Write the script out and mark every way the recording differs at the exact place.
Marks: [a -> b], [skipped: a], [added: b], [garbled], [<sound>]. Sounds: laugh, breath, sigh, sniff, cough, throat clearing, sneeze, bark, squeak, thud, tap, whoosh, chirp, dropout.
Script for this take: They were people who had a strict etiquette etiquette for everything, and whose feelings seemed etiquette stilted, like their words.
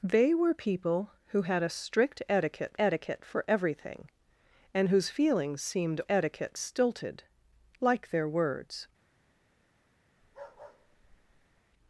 They were people who had a strict etiquette etiquette for everything, and whose feelings seemed etiquette stilted, like their words. [bark]